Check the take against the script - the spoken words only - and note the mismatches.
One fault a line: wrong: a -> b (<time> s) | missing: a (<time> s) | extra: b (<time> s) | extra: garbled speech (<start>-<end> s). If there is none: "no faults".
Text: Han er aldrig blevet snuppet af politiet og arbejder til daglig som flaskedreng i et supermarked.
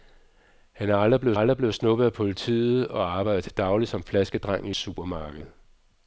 extra: aldrig blevet (1.3 s)
missing: et (4.7 s)